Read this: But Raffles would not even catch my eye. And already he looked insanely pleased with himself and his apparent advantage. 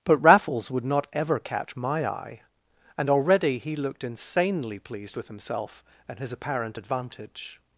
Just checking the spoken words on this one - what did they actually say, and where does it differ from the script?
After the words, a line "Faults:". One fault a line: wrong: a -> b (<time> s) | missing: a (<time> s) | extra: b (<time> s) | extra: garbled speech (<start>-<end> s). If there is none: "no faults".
But Raffles would not ever catch my eye. And already he looked insanely pleased with himself and his apparent advantage.
Faults:
wrong: even -> ever (1.1 s)